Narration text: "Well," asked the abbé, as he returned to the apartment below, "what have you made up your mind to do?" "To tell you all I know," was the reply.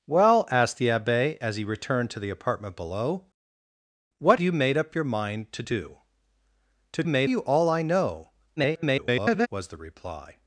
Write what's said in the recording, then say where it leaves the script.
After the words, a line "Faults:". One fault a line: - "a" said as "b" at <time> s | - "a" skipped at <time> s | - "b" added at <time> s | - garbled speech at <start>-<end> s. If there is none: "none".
"Well," asked the abbé, as he returned to the apartment below, "what you made up your mind to do?" "To made you all I know," [garbled] was the reply.
Faults:
- "have" skipped at 4.4 s
- "tell" said as "made" at 7.0 s
- garbled speech at 8.6-9.5 s